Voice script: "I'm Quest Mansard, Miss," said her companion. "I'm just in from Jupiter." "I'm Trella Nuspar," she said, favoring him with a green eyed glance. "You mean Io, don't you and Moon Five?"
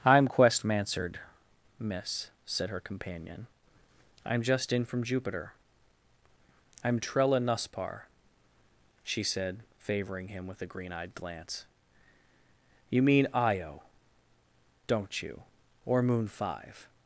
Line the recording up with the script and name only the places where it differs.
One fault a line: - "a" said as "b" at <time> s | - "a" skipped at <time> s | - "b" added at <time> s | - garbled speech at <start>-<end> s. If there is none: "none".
- "and" said as "or" at 15.9 s